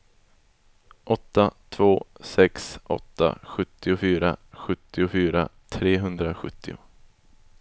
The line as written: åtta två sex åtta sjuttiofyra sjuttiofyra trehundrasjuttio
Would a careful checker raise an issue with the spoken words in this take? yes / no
no